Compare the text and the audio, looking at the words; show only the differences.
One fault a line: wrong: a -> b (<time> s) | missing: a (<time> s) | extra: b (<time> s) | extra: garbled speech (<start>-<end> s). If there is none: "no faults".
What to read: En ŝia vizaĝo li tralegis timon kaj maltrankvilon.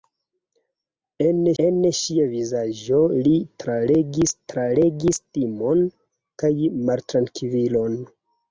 extra: en (1.6 s)
extra: tralegis (4.5 s)